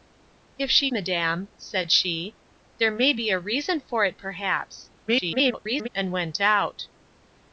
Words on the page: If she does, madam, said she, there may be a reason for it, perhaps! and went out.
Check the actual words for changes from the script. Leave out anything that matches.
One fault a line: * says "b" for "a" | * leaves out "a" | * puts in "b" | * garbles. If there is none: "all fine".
* leaves out "does"
* garbles